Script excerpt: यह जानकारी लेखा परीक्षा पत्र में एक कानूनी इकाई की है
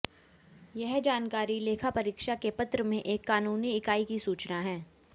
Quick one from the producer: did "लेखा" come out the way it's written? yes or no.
yes